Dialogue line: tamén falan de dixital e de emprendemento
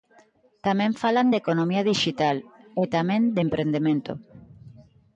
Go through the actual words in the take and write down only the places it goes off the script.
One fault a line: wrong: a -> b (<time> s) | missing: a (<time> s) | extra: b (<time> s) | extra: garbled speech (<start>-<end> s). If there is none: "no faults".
extra: economía (1.4 s)
extra: tamén (3.0 s)